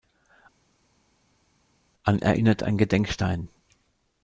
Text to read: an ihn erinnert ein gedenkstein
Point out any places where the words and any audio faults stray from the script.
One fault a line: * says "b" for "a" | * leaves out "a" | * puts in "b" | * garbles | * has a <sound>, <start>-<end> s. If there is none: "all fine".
* leaves out "ihn"